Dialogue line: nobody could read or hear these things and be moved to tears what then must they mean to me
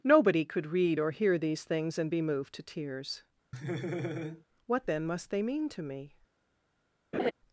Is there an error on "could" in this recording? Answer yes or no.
no